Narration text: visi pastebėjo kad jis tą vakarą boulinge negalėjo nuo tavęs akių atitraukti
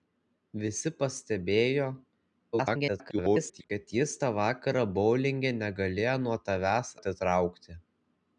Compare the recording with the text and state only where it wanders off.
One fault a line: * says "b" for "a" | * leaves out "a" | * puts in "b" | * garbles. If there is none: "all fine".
* garbles
* leaves out "akių"